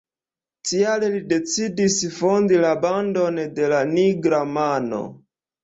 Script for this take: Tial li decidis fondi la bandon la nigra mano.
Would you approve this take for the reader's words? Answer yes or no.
no